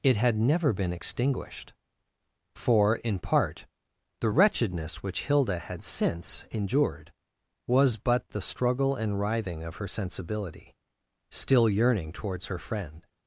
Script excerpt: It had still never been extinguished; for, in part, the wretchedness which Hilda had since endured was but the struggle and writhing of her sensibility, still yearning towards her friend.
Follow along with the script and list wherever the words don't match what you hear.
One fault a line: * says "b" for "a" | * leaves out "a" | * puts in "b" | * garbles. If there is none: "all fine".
* leaves out "still"